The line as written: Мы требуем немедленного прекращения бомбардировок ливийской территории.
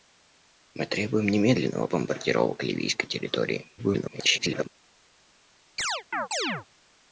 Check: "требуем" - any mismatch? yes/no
no